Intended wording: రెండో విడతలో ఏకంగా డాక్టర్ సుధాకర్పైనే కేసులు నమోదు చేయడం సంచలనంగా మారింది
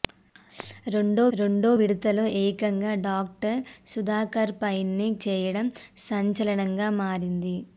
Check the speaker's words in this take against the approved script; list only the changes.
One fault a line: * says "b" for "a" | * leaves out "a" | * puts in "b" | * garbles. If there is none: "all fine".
* puts in "రెండో"
* leaves out "కేసులు నమోదు"